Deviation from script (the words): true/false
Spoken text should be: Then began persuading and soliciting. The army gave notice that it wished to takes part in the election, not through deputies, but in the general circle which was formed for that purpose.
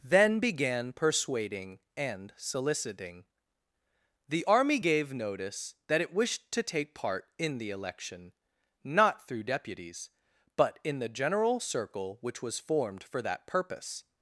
true